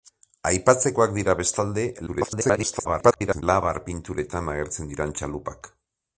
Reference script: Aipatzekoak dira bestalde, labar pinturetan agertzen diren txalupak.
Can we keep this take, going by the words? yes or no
no